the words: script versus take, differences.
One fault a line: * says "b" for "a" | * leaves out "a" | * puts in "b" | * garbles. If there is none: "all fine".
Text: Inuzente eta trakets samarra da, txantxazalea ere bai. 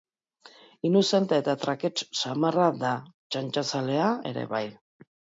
all fine